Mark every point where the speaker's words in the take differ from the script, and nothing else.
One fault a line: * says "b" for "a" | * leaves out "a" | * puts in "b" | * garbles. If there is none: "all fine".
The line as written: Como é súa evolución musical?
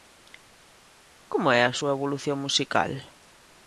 * puts in "a"